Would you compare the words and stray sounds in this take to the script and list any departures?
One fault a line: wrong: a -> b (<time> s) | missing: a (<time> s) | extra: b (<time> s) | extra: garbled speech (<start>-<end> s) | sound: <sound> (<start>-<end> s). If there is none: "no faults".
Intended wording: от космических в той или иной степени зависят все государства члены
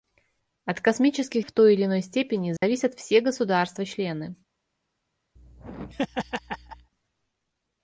sound: dropout (2.6-2.6 s)
sound: laugh (5.4-6.9 s)